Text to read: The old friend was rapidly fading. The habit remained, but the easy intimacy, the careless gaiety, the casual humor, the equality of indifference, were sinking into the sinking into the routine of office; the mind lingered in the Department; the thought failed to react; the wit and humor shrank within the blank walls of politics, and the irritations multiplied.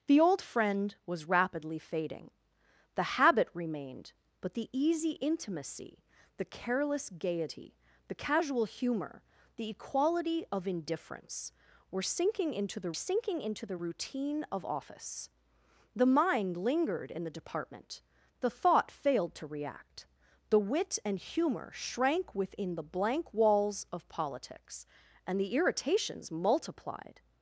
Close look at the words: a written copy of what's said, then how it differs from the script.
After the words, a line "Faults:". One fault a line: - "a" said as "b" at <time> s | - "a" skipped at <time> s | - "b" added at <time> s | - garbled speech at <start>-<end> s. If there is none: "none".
The old friend was rapidly fading. The habit remained, but the easy intimacy, the careless gaiety, the casual humor, the equality of indifference, were sinking into the sinking into the routine of office; the mind lingered in the Department; the thought failed to react; the wit and humor shrank within the blank walls of politics, and the irritations multiplied.
Faults:
none